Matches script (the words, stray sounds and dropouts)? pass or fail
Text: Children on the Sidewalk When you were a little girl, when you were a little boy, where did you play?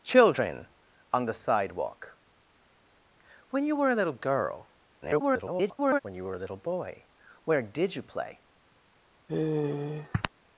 fail